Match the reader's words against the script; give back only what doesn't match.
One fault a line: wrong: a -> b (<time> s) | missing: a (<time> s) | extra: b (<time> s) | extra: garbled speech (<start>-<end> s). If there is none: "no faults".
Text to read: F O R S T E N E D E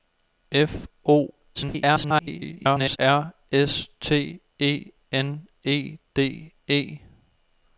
extra: garbled speech (1.5-3.0 s)